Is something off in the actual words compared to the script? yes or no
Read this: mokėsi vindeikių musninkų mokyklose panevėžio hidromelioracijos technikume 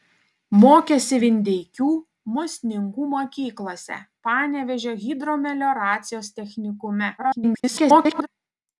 yes